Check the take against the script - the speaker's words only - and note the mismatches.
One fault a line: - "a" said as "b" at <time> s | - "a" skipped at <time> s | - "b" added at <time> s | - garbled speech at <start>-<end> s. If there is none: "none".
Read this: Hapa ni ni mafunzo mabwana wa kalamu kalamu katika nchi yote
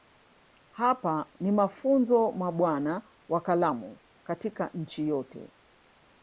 - "ni" skipped at 1.5 s
- "kalamu" skipped at 4.0 s